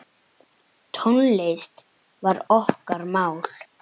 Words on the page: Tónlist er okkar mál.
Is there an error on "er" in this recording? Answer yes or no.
yes